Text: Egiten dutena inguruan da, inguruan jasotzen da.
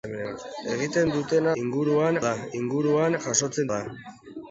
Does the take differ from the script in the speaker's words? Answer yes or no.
no